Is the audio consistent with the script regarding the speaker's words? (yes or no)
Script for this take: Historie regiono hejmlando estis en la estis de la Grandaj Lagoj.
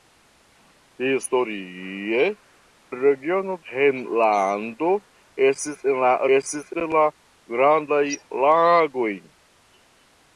yes